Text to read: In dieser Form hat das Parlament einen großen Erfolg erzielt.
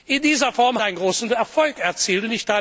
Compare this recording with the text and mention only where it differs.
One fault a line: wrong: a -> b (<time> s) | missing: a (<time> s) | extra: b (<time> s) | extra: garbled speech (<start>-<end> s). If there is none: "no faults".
missing: hat das Parlament (0.8 s)